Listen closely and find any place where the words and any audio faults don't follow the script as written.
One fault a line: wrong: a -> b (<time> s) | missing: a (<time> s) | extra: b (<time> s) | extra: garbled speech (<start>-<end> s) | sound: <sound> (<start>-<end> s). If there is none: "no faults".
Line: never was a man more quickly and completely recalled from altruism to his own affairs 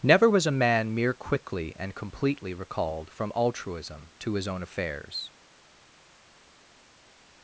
wrong: more -> mere (0.9 s)